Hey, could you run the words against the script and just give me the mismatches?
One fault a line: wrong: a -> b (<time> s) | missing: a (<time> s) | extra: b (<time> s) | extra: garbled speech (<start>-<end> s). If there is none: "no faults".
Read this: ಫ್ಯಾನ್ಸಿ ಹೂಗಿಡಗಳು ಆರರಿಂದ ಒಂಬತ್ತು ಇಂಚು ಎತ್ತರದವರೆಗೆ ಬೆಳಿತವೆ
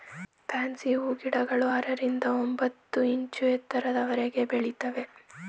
no faults